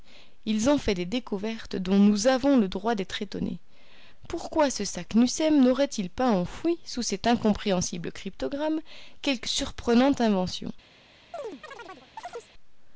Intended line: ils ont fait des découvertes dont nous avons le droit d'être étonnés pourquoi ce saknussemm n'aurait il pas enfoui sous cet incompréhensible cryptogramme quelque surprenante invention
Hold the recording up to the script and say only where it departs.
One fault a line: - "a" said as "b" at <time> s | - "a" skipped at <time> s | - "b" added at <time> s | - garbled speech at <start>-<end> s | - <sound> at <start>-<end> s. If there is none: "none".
- chirp at 11.3-12.5 s